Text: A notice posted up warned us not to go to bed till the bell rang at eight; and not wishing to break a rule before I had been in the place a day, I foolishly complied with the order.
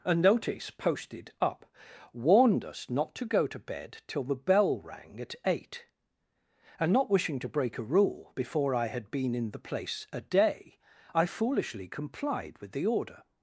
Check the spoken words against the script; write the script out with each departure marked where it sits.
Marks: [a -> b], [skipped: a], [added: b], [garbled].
A notice posted up warned us not to go to bed till the bell rang at eight; and not wishing to break a rule before I had been in the place a day, I foolishly complied with the order.